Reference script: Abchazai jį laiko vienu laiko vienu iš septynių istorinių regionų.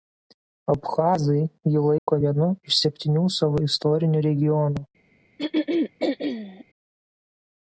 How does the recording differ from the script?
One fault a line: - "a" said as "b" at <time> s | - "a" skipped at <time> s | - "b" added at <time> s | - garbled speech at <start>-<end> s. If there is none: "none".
- "laiko vienu" skipped at 2.5 s
- "savo" added at 3.4 s